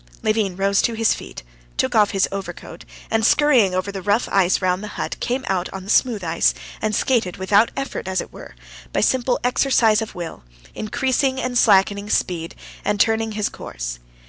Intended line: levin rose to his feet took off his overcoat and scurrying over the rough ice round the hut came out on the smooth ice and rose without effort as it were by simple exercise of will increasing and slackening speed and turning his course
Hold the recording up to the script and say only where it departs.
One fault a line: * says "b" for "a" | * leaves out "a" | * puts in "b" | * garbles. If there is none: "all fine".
* says "skated" for "rose"